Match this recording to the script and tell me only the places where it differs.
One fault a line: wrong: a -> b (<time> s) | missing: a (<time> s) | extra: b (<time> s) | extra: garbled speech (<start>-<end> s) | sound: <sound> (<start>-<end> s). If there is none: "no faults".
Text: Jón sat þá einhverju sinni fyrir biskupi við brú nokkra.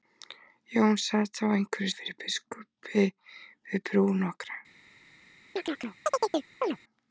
missing: sinni (1.9 s)
sound: chirp (5.6-6.8 s)